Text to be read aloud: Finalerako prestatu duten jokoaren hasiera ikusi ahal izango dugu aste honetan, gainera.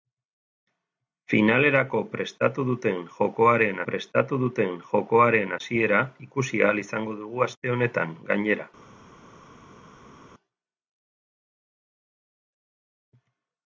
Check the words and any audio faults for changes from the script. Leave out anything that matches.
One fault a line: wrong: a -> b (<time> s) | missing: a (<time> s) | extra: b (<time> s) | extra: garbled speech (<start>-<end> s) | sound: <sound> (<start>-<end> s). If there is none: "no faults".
extra: prestatu duten jokoaren (3.9 s)